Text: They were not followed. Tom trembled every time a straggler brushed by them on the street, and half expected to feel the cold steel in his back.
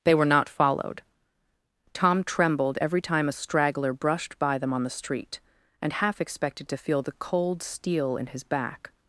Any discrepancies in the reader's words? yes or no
no